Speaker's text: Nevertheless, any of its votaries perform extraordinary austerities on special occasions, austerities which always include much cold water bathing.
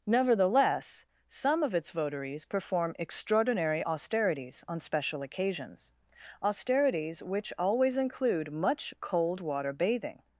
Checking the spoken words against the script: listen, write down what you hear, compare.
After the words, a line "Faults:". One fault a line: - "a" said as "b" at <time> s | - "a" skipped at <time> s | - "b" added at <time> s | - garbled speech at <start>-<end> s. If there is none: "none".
Nevertheless, some of its votaries perform extraordinary austerities on special occasions, austerities which always include much cold water bathing.
Faults:
- "any" said as "some" at 1.3 s